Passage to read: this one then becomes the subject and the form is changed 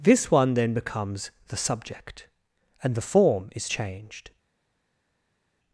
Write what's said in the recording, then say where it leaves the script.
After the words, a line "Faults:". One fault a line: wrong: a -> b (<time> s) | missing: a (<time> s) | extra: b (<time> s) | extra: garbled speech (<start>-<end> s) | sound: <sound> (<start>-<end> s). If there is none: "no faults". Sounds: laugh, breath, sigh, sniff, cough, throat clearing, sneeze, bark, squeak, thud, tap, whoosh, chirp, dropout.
this one then becomes the subject and the form is changed
Faults:
no faults